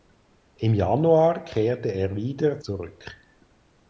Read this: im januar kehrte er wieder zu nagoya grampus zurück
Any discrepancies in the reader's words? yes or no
yes